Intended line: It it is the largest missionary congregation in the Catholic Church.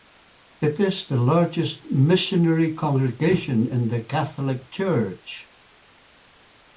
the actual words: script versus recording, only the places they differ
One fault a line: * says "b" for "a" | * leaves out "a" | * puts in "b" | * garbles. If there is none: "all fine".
* leaves out "it"